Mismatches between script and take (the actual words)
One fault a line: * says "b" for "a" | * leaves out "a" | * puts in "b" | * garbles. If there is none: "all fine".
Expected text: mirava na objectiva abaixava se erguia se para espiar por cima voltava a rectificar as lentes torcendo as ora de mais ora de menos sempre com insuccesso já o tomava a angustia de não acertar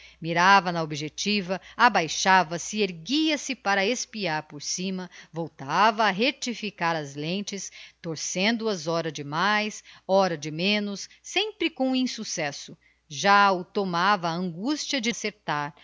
* leaves out "não"